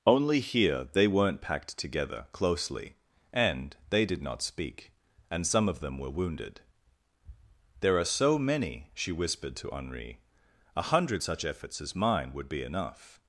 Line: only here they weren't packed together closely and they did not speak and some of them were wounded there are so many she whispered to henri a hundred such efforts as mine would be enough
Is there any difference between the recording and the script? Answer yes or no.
no